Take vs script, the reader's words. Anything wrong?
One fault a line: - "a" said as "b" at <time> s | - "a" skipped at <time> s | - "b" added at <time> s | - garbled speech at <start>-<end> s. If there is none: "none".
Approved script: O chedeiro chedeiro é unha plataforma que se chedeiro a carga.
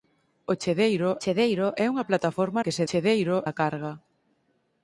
none